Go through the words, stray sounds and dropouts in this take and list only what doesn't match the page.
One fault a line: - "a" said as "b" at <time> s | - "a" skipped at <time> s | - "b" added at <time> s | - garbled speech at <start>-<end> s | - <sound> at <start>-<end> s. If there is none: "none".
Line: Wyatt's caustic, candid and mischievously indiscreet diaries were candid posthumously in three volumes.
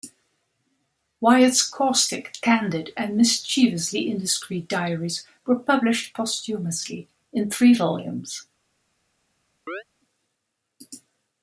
- "candid" said as "published" at 5.6 s
- chirp at 9.7-9.8 s